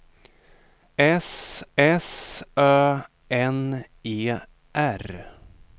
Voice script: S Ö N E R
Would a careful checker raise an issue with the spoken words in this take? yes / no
yes